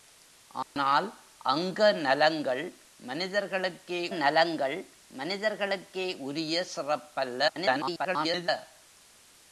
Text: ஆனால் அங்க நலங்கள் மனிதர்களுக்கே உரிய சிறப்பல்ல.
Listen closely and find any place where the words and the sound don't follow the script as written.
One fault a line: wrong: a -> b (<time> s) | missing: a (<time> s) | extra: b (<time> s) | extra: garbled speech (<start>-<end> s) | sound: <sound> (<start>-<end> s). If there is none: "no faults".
sound: dropout (0.6-0.8 s)
extra: நலங்கள் மனிதர்களுக்கே (4.1 s)
extra: garbled speech (7.5-8.5 s)